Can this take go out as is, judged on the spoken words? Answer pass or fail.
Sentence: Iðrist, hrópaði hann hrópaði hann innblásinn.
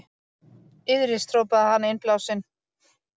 fail